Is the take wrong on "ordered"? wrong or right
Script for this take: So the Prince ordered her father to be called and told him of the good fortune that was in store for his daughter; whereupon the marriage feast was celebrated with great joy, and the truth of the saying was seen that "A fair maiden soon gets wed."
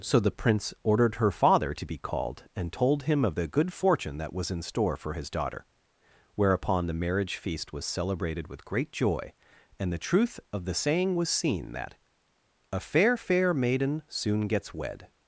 right